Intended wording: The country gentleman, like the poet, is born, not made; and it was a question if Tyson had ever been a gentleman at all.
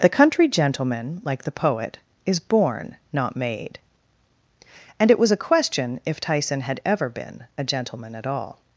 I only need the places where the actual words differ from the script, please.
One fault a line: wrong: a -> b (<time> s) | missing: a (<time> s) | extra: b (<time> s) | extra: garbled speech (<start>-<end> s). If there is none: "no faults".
no faults